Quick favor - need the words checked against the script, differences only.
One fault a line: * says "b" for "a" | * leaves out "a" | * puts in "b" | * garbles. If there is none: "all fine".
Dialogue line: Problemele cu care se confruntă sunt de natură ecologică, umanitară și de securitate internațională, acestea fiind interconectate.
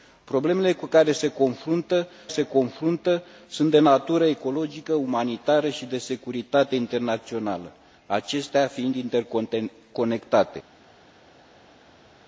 * puts in "se confruntă"